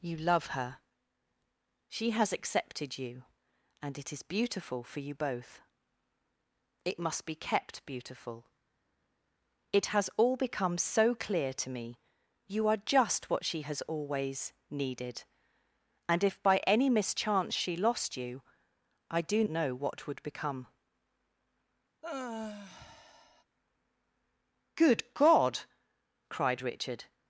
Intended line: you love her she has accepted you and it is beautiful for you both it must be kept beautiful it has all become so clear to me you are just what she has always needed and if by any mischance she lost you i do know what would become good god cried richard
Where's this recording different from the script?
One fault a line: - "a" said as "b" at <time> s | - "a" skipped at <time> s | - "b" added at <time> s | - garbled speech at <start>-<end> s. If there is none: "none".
none